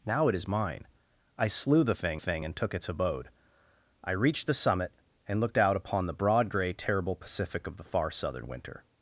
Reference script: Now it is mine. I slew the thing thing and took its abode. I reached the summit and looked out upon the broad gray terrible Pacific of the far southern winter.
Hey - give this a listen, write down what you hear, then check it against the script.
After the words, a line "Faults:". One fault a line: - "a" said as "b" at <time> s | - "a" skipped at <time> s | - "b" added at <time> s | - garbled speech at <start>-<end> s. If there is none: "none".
Now it is mine. I slew the thing thing and took its abode. I reached the summit and looked out upon the broad gray terrible Pacific of the far southern winter.
Faults:
none